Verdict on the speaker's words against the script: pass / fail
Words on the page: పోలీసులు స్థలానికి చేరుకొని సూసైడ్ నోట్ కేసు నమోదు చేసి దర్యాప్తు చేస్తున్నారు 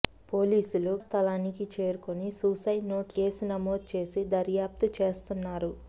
pass